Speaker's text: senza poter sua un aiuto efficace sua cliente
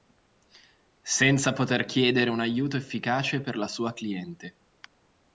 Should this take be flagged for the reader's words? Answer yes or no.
yes